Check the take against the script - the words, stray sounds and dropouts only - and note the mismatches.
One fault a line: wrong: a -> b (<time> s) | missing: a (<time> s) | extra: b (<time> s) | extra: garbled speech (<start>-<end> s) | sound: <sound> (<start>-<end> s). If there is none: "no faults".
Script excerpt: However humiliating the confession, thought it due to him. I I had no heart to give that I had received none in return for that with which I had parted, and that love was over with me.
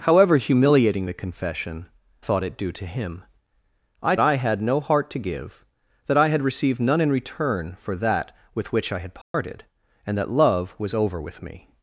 sound: dropout (9.2-9.3 s)